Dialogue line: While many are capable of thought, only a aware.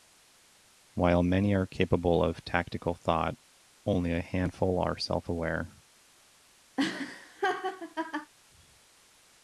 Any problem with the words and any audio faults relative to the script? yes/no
yes